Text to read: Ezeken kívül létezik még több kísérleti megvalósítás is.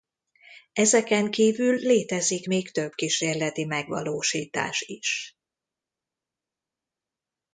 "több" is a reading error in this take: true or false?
false